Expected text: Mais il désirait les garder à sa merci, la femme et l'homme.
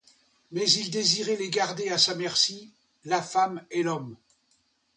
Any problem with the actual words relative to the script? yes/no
no